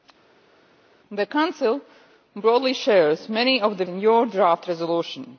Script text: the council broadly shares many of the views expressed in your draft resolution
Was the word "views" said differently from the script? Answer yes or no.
yes